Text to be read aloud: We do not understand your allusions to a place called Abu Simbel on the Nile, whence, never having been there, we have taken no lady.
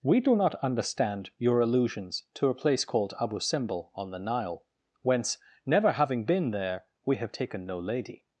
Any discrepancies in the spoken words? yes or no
no